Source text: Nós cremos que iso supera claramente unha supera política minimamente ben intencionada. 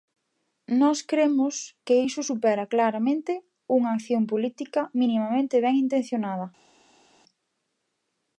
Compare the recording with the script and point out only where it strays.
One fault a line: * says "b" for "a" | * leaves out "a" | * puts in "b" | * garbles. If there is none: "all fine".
* says "acción" for "supera"